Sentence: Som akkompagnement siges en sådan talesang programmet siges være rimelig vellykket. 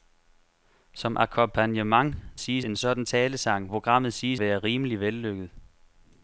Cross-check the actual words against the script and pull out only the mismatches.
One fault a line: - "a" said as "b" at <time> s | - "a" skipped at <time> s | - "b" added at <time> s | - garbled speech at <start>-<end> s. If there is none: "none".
none